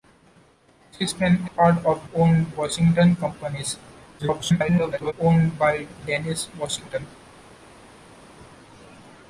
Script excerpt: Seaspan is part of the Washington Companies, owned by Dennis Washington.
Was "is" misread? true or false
true